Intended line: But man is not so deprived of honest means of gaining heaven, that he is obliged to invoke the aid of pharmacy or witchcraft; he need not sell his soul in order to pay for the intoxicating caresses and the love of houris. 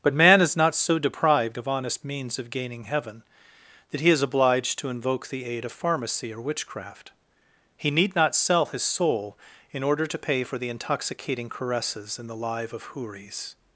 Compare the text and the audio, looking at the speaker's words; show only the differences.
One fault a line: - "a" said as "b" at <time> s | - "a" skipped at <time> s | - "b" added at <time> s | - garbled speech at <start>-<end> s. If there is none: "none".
- "love" said as "live" at 12.3 s